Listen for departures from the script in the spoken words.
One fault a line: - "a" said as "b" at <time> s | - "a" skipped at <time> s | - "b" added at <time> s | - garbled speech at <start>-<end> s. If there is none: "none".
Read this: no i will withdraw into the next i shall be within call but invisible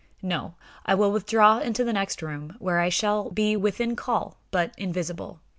- "room where" added at 2.2 s